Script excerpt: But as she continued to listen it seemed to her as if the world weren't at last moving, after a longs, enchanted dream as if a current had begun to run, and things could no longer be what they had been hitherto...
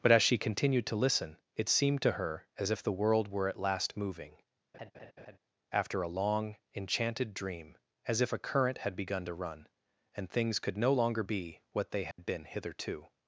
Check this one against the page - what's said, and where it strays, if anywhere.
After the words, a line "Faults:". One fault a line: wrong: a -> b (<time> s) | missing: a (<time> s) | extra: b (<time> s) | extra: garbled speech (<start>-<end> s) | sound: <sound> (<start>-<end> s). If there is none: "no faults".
But as she continued to listen it seemed to her as if the world were at last moving, after a long, enchanted dream as if a current had begun to run, and things could no longer be what they had been hitherto...
Faults:
wrong: weren't -> were (3.3 s)
sound: laugh (4.7-5.4 s)
wrong: longs -> long (6.1 s)
sound: dropout (12.1-12.2 s)